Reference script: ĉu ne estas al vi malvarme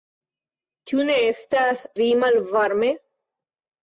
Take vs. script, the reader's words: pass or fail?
fail